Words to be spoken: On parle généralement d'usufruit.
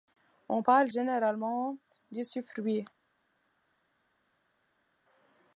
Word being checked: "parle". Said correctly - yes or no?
yes